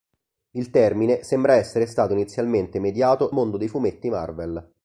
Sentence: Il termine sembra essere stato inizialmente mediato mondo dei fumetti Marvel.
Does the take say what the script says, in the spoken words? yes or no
yes